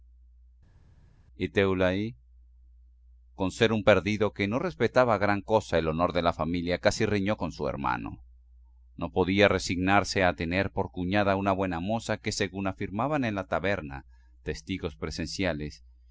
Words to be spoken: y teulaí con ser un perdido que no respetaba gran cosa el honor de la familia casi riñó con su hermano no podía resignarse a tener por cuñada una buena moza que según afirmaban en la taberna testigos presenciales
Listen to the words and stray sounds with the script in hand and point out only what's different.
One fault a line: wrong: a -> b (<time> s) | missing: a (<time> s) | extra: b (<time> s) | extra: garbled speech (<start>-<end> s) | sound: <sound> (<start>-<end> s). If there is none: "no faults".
no faults